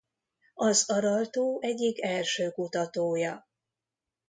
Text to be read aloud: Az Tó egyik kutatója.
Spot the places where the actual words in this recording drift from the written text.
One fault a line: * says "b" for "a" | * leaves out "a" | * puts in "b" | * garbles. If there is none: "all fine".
* puts in "Aral"
* puts in "első"